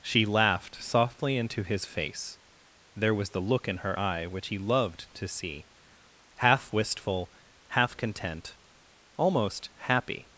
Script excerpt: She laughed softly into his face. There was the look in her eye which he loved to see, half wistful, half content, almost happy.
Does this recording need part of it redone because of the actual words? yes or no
no